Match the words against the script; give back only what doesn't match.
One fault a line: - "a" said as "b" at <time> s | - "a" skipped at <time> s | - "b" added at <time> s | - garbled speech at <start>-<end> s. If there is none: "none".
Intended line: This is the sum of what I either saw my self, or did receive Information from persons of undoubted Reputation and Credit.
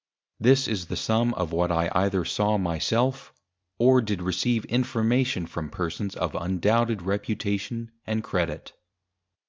none